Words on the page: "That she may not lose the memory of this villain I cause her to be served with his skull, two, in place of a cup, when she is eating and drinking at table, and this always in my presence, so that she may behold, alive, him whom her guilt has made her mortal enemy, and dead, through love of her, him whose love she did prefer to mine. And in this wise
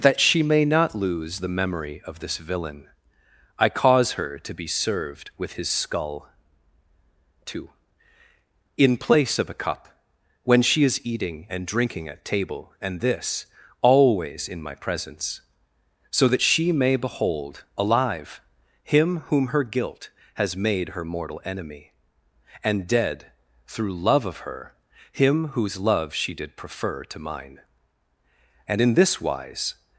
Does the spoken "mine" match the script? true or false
true